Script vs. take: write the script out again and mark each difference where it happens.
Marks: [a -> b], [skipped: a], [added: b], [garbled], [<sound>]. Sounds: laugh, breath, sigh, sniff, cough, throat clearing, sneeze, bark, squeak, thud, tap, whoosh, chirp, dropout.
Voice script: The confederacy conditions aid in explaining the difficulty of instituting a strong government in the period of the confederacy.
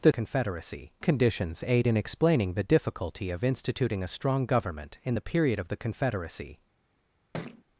The confederacy conditions aid in explaining the difficulty of instituting a strong government in the period of the confederacy. [thud]